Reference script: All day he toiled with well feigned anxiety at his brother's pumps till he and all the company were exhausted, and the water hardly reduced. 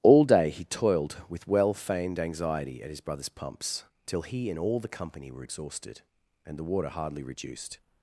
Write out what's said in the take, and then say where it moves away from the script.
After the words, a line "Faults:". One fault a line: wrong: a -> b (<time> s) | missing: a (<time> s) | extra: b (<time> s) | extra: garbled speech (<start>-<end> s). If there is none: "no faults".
All day he toiled with well feigned anxiety at his brother's pumps till he and all the company were exhausted, and the water hardly reduced.
Faults:
no faults